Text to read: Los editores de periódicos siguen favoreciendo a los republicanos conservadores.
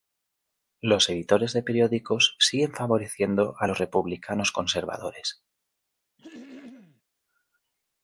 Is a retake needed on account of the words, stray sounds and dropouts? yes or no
yes